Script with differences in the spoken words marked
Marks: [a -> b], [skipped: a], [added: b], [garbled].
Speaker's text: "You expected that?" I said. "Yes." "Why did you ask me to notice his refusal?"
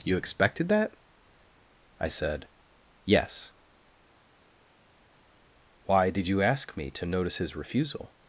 "You expected that?" I said. "Yes." "Why did you ask me to notice his refusal?"